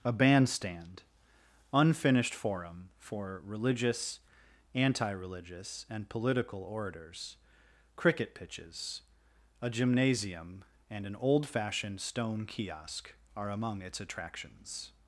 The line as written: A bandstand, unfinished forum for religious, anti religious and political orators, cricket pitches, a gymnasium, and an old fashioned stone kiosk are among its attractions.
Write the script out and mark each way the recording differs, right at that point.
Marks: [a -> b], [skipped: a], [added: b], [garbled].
A bandstand, unfinished forum for religious, anti religious and political orators, cricket pitches, a gymnasium, and an old fashioned stone kiosk are among its attractions.